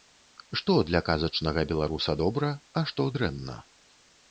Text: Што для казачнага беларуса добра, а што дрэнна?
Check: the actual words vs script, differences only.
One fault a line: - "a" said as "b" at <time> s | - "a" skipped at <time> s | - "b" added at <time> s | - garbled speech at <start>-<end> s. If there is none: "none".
none